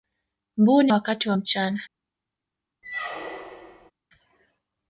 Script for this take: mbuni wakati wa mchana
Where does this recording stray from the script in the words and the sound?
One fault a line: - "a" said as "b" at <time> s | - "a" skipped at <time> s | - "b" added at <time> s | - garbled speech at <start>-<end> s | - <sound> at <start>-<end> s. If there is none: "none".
- squeak at 2.8-3.9 s